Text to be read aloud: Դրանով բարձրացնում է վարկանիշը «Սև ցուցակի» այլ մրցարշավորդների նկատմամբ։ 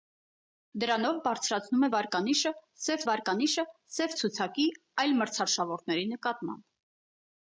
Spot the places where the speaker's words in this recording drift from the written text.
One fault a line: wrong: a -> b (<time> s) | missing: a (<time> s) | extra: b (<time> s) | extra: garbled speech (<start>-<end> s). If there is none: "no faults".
extra: վարկանիշը Սև (3.1 s)